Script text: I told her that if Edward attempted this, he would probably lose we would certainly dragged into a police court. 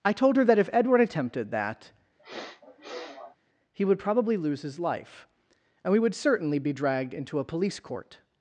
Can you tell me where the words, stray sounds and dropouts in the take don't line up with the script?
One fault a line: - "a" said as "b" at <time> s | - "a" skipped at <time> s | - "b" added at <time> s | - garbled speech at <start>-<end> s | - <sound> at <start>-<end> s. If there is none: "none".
- "this" said as "that" at 1.5 s
- sniff at 2.2-3.4 s
- "his life and" added at 4.6 s
- "be" added at 6.6 s